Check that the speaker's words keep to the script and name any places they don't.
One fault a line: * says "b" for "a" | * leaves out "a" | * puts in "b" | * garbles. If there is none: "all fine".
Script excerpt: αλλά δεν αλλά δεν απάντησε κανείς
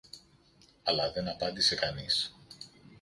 * leaves out "αλλά δεν"